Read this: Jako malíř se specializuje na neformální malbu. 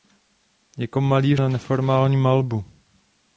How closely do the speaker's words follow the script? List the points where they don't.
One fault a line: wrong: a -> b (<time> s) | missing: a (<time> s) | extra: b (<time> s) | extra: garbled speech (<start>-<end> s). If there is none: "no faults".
missing: se specializuje (1.4 s)